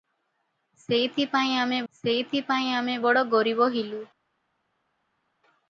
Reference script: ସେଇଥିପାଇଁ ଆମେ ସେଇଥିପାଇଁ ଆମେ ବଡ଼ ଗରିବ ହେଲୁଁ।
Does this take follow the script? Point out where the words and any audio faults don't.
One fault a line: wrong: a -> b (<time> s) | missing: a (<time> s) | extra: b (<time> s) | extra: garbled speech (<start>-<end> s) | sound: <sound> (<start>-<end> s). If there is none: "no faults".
no faults